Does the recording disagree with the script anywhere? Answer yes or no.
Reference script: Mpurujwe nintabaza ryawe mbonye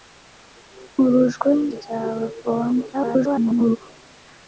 yes